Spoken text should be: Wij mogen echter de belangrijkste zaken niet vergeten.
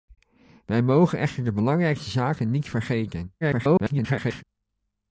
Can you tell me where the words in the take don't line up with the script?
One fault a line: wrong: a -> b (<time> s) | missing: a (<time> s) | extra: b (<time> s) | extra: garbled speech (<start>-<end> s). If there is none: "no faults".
extra: garbled speech (3.4-4.4 s)